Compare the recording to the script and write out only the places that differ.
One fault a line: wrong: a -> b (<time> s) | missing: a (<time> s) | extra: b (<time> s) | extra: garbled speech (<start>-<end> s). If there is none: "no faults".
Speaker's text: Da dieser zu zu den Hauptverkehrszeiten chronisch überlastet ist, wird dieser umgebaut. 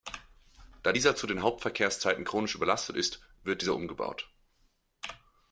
missing: zu (1.3 s)